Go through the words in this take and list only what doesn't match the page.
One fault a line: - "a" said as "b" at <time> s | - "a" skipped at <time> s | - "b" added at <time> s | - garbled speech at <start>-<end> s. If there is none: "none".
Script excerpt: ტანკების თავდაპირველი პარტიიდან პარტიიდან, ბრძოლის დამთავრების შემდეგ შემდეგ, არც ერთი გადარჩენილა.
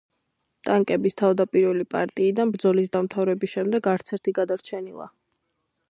- "პარტიიდან" skipped at 2.5 s
- "შემდეგ" skipped at 3.9 s